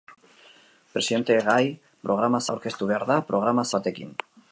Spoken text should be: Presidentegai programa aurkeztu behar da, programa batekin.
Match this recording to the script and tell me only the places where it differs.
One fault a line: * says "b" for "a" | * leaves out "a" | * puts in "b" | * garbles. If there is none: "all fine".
all fine